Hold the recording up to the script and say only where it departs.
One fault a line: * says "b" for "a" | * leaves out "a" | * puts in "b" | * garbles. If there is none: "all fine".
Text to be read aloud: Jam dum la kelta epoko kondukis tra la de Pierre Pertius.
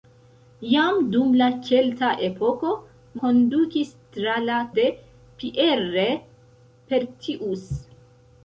all fine